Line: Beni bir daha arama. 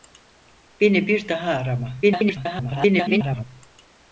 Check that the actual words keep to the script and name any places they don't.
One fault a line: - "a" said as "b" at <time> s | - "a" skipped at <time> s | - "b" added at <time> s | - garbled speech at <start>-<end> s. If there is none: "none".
- garbled speech at 2.0-3.4 s